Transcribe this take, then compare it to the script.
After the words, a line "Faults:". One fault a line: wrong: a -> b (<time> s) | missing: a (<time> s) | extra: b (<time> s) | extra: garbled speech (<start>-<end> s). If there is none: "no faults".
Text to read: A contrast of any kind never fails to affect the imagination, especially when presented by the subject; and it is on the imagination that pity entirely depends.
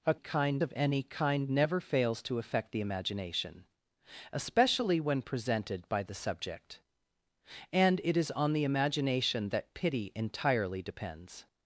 A kind of any kind never fails to affect the imagination, especially when presented by the subject; and it is on the imagination that pity entirely depends.
Faults:
wrong: contrast -> kind (0.2 s)